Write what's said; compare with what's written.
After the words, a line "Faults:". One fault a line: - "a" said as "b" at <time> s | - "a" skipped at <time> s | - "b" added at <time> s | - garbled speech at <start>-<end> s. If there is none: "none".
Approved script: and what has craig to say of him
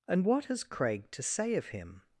and what has craig to say of him
Faults:
none